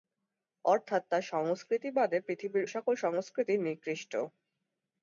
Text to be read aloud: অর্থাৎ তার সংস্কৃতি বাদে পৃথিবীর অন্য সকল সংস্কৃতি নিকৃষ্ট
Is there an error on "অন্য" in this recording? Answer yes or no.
yes